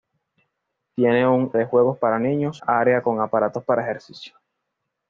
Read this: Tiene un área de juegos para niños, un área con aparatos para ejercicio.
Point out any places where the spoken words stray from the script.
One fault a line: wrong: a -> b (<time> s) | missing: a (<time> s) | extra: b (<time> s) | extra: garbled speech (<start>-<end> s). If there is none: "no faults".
missing: área (1.5 s)
missing: un (2.6 s)